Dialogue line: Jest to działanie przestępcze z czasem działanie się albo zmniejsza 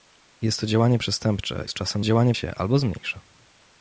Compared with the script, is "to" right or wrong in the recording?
right